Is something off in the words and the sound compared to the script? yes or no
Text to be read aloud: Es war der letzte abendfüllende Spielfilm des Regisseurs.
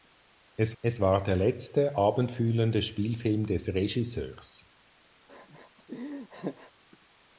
yes